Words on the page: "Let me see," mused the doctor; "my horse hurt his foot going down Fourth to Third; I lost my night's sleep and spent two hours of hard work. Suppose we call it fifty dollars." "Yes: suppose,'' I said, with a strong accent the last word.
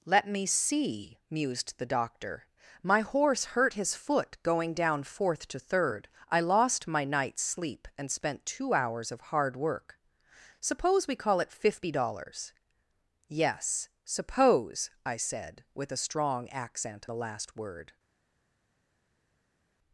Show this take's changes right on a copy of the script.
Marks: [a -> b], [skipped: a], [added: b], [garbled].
"Let me see," mused the doctor; "my horse hurt his foot going down Fourth to Third; I lost my night's sleep and spent two hours of hard work. Suppose we call it fifty dollars." "Yes: suppose,'' I said, with a strong accent the last word.